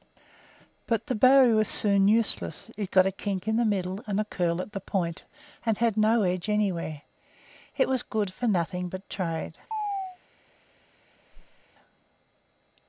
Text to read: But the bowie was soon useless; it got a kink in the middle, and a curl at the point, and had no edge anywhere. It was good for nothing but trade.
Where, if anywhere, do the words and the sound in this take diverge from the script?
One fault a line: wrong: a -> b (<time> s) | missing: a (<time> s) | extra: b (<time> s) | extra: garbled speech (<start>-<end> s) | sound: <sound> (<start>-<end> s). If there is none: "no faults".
sound: chirp (9.7-10.2 s)
sound: whoosh (11.3-11.7 s)